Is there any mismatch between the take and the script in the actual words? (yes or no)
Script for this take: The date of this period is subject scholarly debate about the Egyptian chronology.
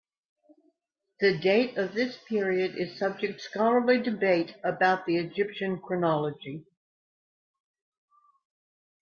no